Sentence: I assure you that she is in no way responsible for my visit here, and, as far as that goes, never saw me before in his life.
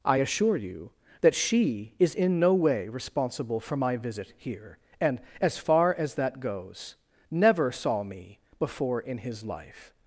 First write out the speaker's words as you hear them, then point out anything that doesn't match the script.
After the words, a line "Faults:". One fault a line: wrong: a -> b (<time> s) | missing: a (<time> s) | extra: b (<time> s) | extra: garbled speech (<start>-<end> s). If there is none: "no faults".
I assure you that she is in no way responsible for my visit here, and, as far as that goes, never saw me before in his life.
Faults:
no faults